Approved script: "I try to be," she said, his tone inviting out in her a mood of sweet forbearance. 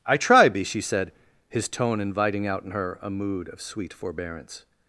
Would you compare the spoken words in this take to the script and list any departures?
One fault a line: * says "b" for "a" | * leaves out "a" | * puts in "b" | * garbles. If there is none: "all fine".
* leaves out "to"